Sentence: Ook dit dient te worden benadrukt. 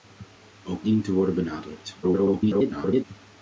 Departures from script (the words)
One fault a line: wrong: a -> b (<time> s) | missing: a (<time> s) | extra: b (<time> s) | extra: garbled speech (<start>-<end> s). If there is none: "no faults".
missing: dit (0.8 s)
extra: garbled speech (2.0-3.0 s)